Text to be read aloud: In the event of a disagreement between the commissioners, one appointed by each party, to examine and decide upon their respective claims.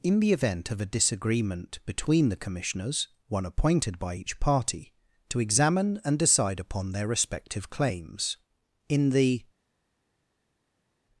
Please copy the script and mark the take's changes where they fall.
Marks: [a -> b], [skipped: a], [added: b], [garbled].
In the event of a disagreement between the commissioners, one appointed by each party, to examine and decide upon their respective claims. [added: In the]